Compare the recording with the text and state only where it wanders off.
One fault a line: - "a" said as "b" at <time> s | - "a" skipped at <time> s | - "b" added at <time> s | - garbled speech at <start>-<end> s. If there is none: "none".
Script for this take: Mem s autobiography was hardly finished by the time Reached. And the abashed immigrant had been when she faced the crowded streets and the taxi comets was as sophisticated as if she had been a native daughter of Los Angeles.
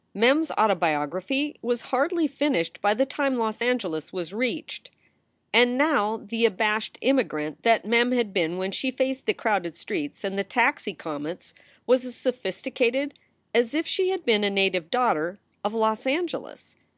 - "Los Angeles was" added at 3.4 s
- "now" added at 5.8 s
- "that Mem" added at 7.6 s